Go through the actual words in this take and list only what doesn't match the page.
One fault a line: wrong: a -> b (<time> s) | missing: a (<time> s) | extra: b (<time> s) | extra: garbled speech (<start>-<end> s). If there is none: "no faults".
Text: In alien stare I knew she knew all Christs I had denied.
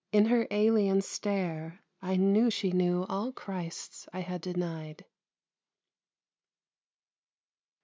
extra: her (0.2 s)